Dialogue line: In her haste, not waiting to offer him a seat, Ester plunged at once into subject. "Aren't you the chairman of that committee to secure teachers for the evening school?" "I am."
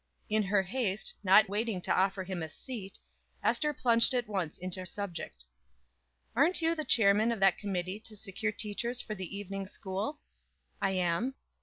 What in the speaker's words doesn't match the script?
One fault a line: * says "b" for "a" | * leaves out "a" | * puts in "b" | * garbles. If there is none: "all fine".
all fine